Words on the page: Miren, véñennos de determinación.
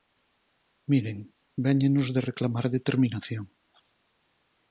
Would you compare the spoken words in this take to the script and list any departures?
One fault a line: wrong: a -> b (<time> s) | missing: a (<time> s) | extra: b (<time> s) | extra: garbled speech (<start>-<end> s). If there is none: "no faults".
extra: reclamar (2.3 s)